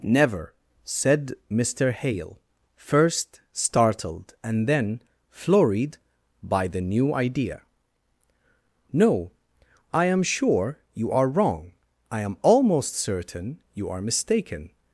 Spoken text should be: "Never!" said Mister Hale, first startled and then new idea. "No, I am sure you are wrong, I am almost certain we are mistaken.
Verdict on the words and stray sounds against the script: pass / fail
fail